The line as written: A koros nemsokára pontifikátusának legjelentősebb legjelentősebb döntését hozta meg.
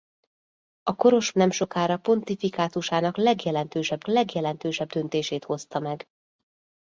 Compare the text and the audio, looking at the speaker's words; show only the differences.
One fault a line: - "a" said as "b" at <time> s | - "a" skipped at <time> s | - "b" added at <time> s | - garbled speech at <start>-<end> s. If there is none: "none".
none